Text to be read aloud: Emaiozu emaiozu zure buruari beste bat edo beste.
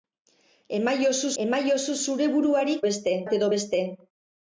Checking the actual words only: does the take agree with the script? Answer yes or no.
yes